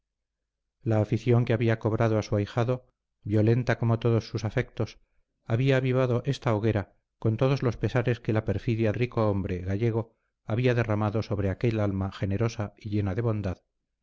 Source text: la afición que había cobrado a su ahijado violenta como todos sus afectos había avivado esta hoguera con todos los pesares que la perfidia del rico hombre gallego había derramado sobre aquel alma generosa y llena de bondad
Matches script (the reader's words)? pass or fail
fail